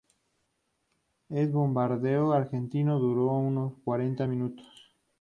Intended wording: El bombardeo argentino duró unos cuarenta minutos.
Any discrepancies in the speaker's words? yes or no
no